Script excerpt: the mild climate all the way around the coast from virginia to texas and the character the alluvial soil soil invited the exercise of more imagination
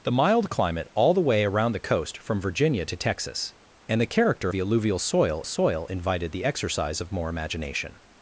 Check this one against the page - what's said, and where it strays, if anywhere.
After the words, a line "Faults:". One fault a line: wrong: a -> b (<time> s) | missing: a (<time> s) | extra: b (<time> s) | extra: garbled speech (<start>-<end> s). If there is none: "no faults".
the mild climate all the way around the coast from virginia to texas and the character the alluvial soil soil invited the exercise of more imagination
Faults:
no faults